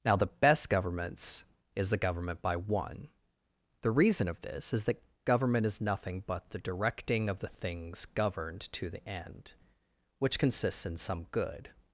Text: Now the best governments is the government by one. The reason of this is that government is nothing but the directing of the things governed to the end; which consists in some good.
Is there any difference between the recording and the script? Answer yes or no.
no